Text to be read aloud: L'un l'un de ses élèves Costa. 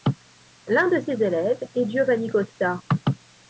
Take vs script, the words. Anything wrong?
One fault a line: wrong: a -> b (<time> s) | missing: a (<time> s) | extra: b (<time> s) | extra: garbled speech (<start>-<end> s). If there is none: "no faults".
missing: l'un (0.9 s)
extra: est Giovanni (1.8 s)